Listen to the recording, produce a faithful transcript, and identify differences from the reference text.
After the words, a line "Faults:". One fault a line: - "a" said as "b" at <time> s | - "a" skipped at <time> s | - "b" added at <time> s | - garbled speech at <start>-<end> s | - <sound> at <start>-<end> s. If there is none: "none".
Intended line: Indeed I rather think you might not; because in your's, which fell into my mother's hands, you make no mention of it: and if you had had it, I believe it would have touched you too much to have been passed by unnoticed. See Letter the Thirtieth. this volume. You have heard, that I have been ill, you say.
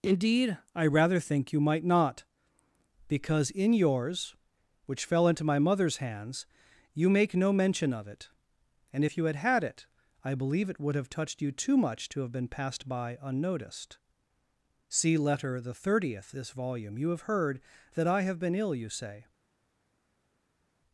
Indeed I rather think you might not; because in your's, which fell into my mother's hands, you make no mention of it: and if you had had it, I believe it would have touched you too much to have been passed by unnoticed. See Letter the Thirtieth. this volume. You have heard, that I have been ill, you say.
Faults:
none